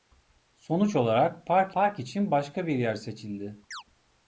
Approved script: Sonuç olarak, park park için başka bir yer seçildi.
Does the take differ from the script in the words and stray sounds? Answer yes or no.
yes